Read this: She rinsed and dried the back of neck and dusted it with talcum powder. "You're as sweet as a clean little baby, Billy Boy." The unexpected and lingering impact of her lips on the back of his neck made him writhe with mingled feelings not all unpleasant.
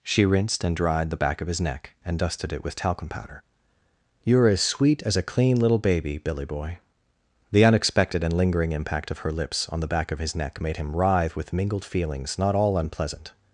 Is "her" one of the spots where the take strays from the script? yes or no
no